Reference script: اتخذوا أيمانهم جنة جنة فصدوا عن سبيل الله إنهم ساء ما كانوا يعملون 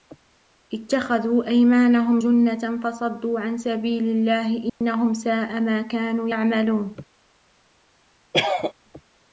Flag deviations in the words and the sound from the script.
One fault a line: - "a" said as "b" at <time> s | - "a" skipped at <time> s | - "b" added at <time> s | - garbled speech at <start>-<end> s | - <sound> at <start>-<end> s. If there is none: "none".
- "جنة" skipped at 2.8 s
- dropout at 4.7-4.8 s
- cough at 8.3-8.7 s